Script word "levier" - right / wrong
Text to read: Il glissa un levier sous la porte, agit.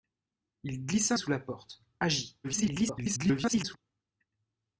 wrong